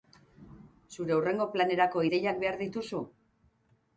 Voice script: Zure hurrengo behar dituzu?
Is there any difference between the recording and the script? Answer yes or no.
yes